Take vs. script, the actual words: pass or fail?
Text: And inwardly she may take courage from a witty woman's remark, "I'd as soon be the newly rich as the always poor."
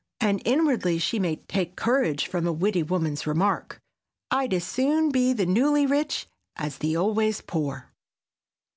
pass